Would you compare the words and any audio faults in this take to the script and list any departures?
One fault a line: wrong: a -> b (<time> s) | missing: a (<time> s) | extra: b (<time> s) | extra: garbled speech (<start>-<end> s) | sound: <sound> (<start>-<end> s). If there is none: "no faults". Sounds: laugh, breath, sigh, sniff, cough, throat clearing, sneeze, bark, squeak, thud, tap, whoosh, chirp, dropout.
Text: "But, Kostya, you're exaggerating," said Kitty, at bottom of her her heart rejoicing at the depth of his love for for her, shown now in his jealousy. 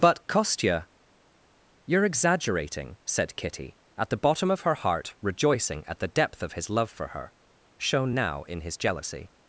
extra: the (4.1 s)
missing: her (4.7 s)
missing: for (7.1 s)